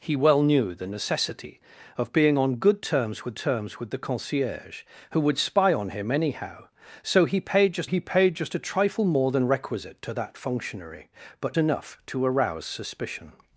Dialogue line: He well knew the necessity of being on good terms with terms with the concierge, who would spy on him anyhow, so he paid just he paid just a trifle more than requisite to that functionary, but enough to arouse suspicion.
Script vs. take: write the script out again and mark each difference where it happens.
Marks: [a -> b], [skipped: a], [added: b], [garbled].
He well knew the necessity of being on good terms with terms with the concierge, who would spy on him anyhow, so he paid just he paid just a trifle more than requisite to that functionary, but enough to arouse suspicion.